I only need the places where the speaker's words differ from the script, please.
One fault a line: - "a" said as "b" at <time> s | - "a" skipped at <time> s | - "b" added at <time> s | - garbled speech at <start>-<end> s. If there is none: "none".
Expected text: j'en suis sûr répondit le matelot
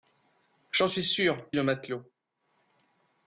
- "répondit" skipped at 1.5 s